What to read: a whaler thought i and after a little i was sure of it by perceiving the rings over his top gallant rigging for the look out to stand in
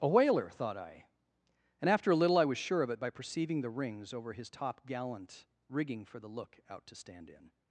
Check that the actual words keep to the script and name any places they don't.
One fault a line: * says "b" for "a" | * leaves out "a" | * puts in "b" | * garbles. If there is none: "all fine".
all fine